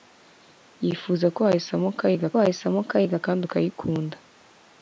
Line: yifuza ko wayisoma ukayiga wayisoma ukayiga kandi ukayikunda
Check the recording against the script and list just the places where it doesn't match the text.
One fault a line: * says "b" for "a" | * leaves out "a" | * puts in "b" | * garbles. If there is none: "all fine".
all fine